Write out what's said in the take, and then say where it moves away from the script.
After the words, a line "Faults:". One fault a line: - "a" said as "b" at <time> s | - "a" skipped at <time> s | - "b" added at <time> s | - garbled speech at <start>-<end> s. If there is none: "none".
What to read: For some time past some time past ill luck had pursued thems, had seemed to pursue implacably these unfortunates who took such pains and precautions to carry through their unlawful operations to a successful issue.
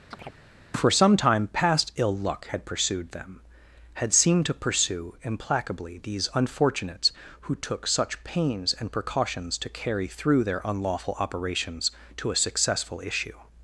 For some time past ill luck had pursued them, had seemed to pursue implacably these unfortunates who took such pains and precautions to carry through their unlawful operations to a successful issue.
Faults:
- "some time past" skipped at 1.9 s
- "thems" said as "them" at 3.1 s